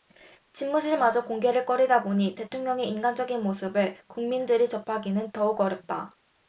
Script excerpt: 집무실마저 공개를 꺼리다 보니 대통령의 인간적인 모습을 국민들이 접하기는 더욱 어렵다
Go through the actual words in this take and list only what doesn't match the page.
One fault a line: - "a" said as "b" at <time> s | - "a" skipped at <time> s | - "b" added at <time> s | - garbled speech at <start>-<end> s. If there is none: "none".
none